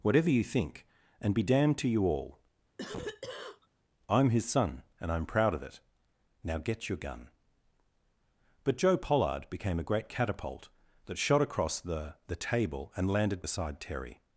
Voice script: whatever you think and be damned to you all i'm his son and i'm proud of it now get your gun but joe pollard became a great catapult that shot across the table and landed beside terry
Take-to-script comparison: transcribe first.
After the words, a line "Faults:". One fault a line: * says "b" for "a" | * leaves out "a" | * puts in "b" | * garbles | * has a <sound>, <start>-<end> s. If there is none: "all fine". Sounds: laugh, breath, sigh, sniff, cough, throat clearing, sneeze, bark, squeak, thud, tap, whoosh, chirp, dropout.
whatever you think and be damned to you all i'm his son and i'm proud of it now get your gun but joe pollard became a great catapult that shot across the the table and landed beside terry
Faults:
* has a cough, 2.8-3.7 s
* puts in "the"